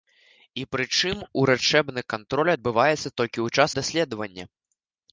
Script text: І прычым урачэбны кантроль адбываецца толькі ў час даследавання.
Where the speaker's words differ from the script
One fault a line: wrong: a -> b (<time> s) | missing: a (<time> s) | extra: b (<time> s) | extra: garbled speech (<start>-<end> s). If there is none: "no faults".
no faults